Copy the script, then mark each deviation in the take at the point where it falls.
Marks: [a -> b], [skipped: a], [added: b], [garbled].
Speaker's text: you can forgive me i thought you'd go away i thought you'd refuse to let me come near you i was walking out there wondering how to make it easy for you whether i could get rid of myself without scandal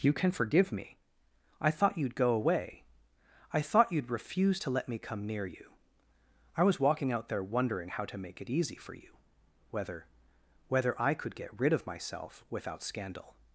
you can forgive me i thought you'd go away i thought you'd refuse to let me come near you i was walking out there wondering how to make it easy for you whether [added: whether] i could get rid of myself without scandal